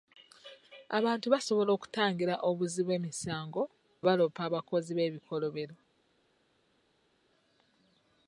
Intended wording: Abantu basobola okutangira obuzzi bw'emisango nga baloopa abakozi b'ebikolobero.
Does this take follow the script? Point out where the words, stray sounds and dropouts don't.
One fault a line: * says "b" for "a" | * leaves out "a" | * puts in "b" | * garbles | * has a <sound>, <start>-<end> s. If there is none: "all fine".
* leaves out "nga"